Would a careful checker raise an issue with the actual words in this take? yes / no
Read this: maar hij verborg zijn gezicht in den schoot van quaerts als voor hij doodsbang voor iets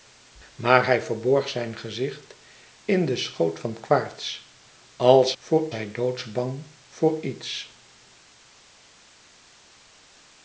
no